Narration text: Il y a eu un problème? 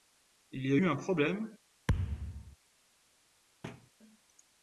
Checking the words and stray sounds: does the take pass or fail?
fail